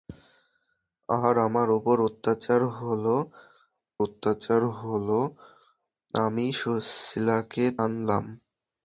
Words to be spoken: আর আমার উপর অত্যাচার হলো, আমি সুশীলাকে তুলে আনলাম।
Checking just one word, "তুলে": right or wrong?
wrong